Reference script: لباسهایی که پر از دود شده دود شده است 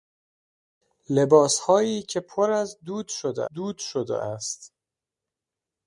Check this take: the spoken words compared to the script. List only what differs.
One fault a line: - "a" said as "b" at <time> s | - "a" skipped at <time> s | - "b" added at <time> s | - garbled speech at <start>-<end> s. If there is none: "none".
none